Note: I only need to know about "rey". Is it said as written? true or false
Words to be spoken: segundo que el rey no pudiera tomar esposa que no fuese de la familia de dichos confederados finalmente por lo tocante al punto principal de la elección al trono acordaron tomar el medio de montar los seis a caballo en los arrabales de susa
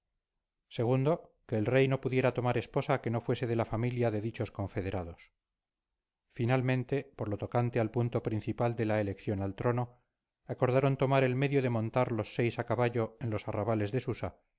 true